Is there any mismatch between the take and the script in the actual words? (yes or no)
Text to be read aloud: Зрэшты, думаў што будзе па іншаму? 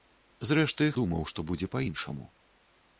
no